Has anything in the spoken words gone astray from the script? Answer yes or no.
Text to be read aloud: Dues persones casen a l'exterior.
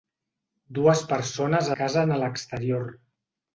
no